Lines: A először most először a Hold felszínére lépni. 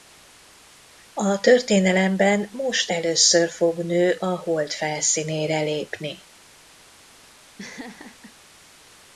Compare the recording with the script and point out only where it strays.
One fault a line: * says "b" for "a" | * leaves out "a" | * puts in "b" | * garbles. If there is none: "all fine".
* says "történelemben" for "először"
* puts in "fog nő"